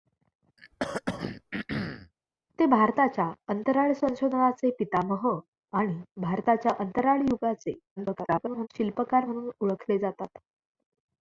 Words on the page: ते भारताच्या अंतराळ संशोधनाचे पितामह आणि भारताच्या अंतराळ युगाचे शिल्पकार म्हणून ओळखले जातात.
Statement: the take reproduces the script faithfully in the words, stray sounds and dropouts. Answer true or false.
false